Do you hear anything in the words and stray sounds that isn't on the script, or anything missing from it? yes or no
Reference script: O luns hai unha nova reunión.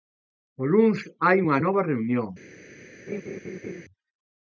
yes